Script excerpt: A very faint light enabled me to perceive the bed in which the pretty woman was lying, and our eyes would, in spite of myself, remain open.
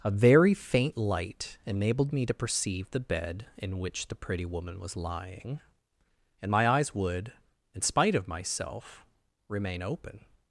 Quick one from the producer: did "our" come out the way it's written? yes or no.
no